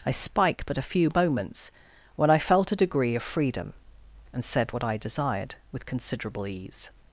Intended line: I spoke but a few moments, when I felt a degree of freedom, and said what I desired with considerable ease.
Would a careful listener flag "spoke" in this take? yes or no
yes